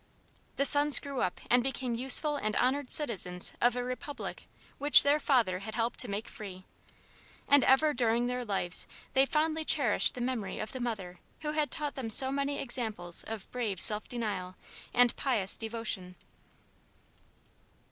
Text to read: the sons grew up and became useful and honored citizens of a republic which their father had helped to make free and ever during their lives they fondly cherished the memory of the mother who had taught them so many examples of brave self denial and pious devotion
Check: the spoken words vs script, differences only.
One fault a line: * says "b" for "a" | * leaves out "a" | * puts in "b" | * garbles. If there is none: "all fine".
all fine